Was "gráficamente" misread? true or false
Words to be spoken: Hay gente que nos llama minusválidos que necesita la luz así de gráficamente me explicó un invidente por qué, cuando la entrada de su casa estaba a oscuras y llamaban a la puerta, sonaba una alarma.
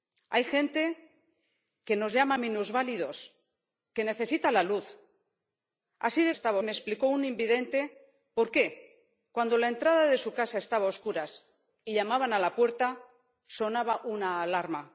true